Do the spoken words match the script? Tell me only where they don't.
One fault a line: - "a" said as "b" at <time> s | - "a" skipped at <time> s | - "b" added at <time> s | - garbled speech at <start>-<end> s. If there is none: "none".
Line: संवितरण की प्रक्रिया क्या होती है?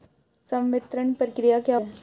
- "की" skipped at 1.1 s
- "होती" skipped at 1.8 s